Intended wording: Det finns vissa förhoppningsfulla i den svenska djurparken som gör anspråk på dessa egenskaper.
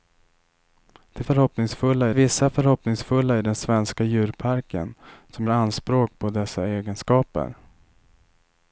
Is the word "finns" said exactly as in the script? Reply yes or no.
no